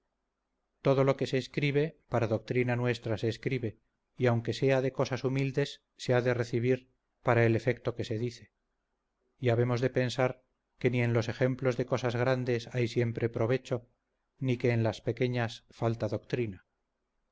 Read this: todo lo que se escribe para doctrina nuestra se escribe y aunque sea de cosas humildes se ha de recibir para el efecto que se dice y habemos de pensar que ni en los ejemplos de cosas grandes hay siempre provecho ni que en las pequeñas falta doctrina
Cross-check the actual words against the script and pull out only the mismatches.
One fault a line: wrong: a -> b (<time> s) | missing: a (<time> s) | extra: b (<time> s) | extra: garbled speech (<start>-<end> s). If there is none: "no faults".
no faults